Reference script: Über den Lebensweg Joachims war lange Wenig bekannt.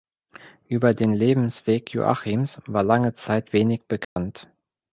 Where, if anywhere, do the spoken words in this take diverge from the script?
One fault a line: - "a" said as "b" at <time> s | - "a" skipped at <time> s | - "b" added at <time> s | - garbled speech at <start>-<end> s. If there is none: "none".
- "Zeit" added at 3.2 s